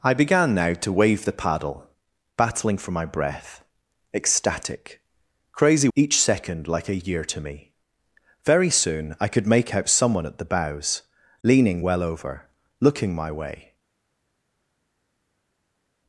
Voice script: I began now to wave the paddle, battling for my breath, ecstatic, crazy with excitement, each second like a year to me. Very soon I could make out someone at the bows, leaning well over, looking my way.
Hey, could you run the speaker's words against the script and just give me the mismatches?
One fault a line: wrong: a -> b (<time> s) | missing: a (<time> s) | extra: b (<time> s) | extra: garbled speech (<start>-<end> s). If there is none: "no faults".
missing: with excitement (5.9 s)